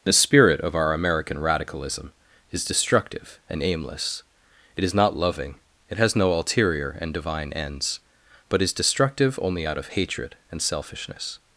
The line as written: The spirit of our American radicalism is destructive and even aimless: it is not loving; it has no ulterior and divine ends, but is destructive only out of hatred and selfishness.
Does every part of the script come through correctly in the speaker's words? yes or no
no